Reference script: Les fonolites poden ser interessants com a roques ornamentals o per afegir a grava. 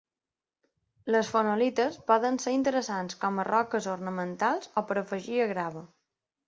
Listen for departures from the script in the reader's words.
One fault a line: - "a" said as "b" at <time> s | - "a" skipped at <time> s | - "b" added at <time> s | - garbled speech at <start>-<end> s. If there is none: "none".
none